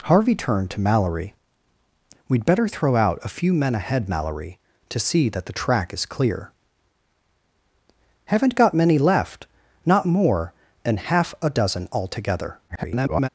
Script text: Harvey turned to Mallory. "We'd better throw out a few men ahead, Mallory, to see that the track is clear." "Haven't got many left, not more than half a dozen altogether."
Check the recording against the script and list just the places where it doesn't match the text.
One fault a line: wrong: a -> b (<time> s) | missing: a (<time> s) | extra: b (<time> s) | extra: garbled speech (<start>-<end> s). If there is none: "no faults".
extra: garbled speech (12.7-13.3 s)